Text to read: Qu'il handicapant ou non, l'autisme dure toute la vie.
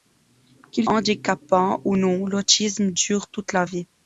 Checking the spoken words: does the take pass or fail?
pass